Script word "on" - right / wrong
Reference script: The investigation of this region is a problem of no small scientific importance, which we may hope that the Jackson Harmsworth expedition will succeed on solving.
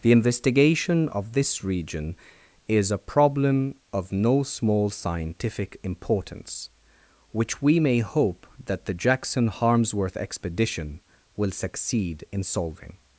wrong